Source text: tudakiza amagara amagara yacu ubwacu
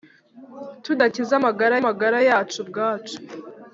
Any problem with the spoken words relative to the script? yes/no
no